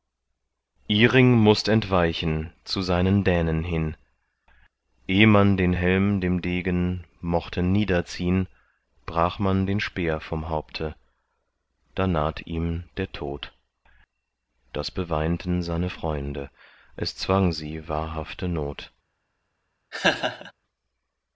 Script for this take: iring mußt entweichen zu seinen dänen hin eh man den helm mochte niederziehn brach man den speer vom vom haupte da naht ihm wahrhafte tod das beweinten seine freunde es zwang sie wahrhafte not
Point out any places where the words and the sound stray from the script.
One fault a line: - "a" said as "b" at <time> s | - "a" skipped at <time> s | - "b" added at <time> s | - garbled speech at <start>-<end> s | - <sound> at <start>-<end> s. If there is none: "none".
- "dem degen" added at 6.2 s
- "vom" skipped at 10.5 s
- "wahrhafte" said as "der" at 13.0 s
- laugh at 19.9-20.5 s